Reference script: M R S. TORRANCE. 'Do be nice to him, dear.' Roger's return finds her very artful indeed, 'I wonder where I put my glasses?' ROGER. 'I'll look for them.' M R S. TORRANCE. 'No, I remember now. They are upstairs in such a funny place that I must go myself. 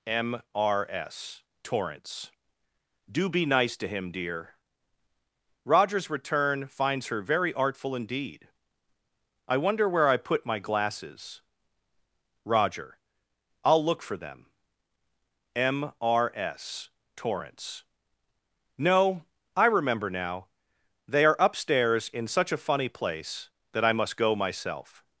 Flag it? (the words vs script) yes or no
no